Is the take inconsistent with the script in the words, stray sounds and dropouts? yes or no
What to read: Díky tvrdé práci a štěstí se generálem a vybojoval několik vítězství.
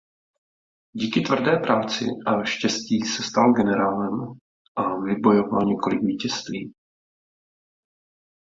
yes